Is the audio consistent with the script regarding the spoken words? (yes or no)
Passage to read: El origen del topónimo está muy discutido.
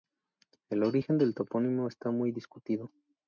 yes